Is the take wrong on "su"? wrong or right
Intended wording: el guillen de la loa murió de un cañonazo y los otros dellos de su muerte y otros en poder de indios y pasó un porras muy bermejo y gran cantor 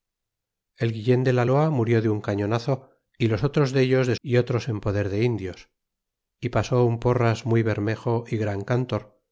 wrong